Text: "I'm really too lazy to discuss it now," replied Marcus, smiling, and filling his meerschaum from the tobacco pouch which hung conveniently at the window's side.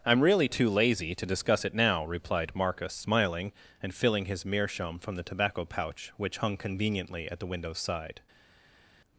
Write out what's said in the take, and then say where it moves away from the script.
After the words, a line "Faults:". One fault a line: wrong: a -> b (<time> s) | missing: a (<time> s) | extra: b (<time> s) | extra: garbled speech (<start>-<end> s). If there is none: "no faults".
"I'm really too lazy to discuss it now," replied Marcus, smiling, and filling his meerschaum from the tobacco pouch which hung conveniently at the window's side.
Faults:
no faults